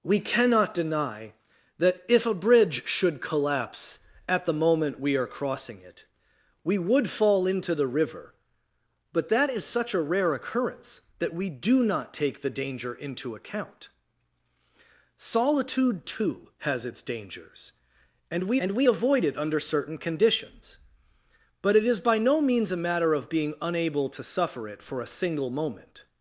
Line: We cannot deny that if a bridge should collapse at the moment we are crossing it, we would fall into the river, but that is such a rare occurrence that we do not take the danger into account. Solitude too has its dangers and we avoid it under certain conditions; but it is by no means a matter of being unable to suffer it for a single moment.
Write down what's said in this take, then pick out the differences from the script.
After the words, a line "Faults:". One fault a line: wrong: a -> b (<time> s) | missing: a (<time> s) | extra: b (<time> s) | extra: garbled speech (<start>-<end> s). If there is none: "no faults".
We cannot deny that if a bridge should collapse at the moment we are crossing it, we would fall into the river, but that is such a rare occurrence that we do not take the danger into account. Solitude too has its dangers and we and we avoid it under certain conditions; but it is by no means a matter of being unable to suffer it for a single moment.
Faults:
extra: and we (18.6 s)